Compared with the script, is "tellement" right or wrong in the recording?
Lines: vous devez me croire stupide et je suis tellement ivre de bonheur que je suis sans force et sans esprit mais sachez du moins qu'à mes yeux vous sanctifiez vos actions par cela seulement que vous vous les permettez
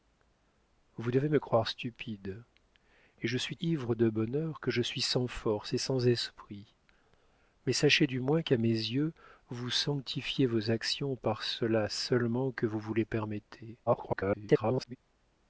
wrong